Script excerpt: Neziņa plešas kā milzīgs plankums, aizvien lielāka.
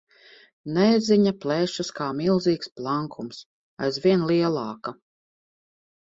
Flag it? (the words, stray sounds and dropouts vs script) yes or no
no